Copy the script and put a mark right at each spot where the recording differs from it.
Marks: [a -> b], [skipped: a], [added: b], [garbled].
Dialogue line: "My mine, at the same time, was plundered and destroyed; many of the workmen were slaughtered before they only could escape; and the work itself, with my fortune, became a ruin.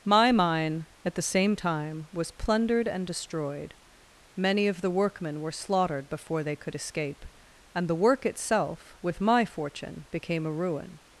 "My mine, at the same time, was plundered and destroyed; many of the workmen were slaughtered before they [skipped: only] could escape; and the work itself, with my fortune, became a ruin.